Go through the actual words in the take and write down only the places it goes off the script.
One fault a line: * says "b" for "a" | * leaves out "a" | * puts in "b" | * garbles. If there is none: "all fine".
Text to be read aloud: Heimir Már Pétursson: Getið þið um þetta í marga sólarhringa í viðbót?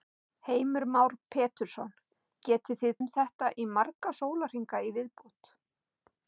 all fine